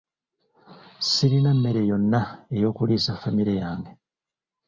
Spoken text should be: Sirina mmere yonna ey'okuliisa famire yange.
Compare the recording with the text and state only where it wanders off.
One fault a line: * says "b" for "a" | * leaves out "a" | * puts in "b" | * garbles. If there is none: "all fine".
all fine